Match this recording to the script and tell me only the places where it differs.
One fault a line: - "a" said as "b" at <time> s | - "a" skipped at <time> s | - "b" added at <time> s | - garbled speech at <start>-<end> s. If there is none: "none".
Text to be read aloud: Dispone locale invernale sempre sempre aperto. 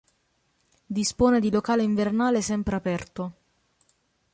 - "di" added at 1.4 s
- "sempre" skipped at 2.8 s